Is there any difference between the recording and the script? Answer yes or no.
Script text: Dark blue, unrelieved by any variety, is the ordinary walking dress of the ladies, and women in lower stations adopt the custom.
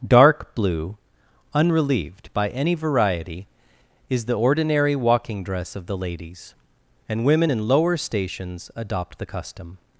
no